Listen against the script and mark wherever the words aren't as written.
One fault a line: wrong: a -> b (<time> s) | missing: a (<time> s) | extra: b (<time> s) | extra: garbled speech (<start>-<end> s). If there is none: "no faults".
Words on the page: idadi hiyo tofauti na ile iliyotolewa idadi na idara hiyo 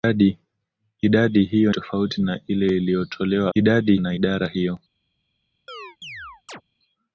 no faults